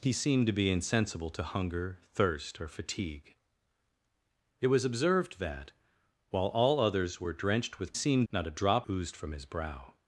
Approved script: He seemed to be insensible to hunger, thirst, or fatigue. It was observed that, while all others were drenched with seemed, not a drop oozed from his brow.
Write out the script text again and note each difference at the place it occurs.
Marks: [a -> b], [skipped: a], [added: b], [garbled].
He seemed to be insensible to hunger, thirst, or fatigue. It was observed that, while all others were drenched with seemed, not a drop oozed from his brow.